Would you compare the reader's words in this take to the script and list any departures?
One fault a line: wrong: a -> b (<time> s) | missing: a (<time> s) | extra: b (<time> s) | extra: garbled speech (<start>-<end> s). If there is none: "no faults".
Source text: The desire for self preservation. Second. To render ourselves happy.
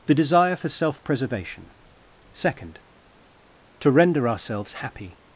no faults